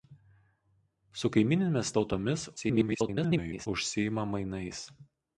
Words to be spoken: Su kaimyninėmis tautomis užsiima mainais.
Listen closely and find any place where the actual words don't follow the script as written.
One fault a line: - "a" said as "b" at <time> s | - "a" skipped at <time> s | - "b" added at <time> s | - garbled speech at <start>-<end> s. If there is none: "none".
- garbled speech at 2.6-3.7 s